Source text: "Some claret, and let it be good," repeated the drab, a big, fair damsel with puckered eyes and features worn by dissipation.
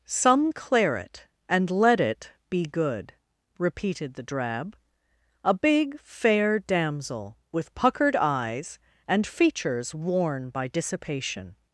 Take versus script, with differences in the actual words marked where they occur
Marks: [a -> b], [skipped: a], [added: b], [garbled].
"Some claret, and let it be good," repeated the drab, a big, fair damsel with puckered eyes and features worn by dissipation.